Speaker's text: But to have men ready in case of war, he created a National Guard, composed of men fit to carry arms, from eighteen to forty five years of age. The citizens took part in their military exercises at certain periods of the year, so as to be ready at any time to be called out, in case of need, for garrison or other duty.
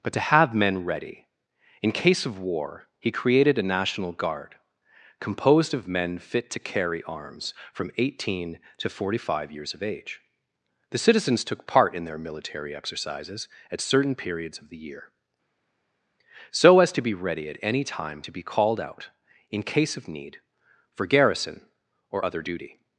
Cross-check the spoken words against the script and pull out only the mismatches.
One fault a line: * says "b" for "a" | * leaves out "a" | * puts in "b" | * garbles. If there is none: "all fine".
all fine